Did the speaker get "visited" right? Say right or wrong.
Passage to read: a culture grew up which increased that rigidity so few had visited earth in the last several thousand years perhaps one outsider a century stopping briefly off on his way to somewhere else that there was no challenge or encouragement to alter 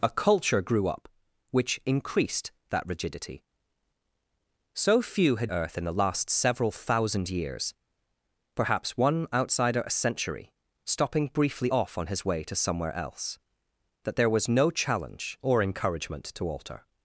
wrong